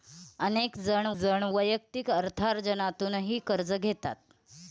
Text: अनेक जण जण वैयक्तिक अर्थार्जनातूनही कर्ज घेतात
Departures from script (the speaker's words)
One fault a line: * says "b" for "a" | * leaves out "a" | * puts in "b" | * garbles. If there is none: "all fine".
all fine